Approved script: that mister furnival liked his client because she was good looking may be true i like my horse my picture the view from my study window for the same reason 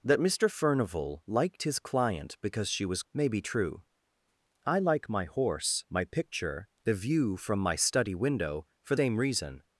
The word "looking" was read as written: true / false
false